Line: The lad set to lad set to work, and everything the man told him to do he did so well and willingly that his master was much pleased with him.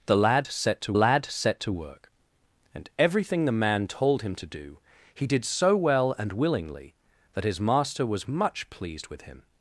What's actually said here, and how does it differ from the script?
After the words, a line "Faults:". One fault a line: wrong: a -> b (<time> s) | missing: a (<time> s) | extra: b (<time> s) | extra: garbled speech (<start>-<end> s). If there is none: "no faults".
The lad set to lad set to work, and everything the man told him to do he did so well and willingly that his master was much pleased with him.
Faults:
no faults